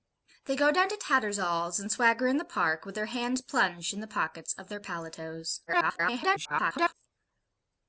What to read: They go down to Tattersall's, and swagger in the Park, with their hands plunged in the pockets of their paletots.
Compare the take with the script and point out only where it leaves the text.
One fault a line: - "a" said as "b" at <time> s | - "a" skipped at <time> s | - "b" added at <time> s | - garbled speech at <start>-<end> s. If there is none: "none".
- garbled speech at 5.7-6.9 s